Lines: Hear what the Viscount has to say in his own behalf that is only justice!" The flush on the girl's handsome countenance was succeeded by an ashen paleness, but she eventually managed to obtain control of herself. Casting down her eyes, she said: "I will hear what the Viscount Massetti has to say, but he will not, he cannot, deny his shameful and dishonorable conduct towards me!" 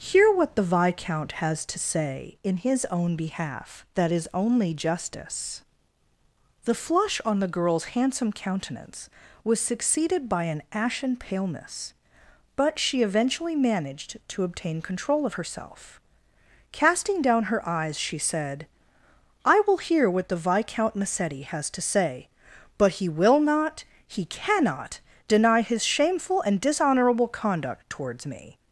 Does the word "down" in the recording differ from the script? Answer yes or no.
no